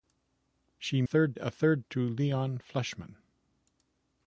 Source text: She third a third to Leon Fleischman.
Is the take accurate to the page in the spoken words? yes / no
yes